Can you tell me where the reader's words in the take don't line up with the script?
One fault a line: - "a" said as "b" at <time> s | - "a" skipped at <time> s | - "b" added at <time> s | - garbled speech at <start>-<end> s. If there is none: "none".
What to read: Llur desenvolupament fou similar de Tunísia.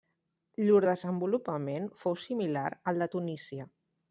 - "al" added at 2.9 s